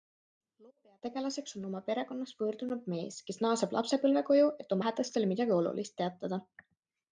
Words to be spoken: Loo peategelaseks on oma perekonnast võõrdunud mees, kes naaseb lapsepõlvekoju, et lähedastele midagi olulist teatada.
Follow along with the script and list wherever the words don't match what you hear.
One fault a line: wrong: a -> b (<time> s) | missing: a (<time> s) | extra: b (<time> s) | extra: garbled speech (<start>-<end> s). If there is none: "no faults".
no faults